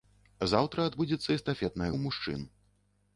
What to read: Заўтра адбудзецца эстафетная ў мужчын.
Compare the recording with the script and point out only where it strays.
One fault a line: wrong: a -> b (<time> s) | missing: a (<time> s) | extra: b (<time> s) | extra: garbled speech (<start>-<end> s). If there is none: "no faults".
no faults